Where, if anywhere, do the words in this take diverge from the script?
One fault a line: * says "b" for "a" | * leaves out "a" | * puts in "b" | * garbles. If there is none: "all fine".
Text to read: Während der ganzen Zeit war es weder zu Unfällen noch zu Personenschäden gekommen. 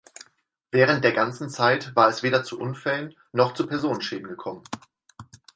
all fine